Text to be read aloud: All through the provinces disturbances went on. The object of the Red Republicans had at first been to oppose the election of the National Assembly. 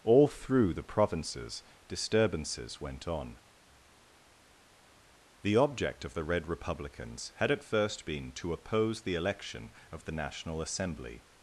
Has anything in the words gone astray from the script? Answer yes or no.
no